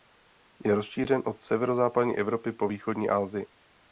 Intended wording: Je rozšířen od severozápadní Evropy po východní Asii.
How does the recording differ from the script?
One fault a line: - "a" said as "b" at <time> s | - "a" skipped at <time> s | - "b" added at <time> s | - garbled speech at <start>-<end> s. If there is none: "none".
none